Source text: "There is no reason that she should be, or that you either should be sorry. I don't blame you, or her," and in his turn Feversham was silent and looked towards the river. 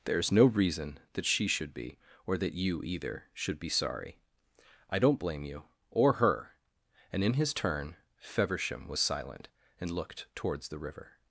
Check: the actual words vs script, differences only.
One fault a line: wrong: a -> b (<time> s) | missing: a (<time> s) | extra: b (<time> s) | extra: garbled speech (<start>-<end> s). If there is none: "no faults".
no faults